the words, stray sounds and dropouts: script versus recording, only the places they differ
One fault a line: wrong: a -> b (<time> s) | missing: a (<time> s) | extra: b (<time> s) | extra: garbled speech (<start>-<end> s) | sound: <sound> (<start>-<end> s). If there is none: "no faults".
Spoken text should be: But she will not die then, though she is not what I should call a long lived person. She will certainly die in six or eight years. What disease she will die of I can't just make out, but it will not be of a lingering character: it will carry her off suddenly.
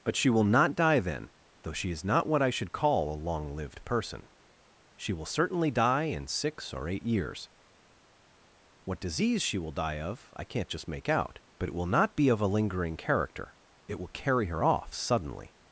no faults